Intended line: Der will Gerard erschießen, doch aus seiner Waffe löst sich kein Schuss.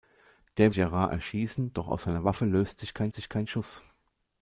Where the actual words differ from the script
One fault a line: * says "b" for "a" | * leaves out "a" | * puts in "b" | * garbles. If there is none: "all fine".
* leaves out "will"
* puts in "sich kein"